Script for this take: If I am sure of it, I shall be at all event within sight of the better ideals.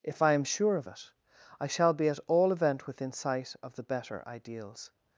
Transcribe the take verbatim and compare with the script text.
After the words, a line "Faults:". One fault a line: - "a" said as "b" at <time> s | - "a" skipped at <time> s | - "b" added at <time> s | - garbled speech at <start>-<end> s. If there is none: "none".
If I am sure of it, I shall be at all event within sight of the better ideals.
Faults:
none